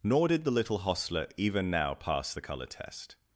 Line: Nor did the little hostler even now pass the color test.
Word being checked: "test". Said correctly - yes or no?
yes